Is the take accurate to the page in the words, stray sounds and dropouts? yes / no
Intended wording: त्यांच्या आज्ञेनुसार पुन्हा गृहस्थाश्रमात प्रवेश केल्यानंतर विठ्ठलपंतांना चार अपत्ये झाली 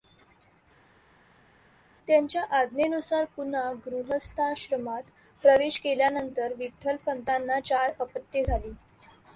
yes